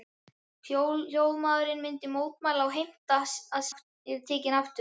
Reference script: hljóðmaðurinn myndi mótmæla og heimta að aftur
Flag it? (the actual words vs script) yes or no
no